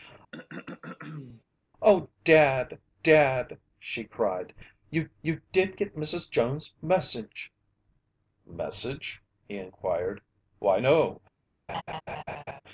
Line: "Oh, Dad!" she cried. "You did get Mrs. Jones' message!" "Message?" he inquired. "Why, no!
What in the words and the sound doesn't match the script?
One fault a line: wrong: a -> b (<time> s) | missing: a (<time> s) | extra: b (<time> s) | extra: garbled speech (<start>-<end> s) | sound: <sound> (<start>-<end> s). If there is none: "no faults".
sound: throat clearing (0.3-1.4 s)
extra: Dad (3.0 s)
extra: you (5.2 s)
sound: laugh (11.7-12.6 s)